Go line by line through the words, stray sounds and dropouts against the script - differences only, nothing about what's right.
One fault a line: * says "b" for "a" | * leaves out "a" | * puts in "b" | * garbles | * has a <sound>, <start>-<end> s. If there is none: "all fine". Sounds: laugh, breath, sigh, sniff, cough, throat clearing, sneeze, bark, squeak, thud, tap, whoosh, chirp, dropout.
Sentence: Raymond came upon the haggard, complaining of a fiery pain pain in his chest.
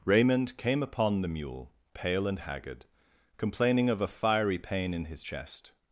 * puts in "mule pale and"
* leaves out "pain"